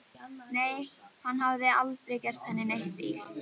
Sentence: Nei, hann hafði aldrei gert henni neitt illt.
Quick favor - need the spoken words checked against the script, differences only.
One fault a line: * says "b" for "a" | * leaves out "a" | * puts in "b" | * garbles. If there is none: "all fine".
all fine